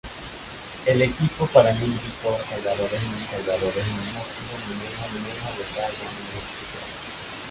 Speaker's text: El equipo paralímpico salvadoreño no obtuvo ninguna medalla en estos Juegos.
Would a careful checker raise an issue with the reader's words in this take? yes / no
yes